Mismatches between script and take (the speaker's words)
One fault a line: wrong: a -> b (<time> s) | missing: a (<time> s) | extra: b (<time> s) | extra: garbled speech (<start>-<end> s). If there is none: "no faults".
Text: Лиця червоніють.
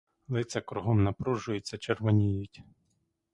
extra: кругом напружуються (0.6 s)